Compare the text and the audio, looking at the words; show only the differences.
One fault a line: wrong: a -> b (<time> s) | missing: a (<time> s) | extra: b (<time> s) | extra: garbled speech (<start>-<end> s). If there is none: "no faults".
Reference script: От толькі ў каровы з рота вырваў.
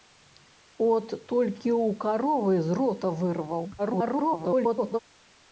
extra: garbled speech (3.8-5.0 s)